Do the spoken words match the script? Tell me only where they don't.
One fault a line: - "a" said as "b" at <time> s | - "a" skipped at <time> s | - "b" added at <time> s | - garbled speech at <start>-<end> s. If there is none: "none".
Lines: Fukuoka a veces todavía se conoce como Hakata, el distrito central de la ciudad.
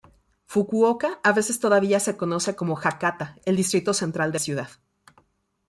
- "la" skipped at 4.4 s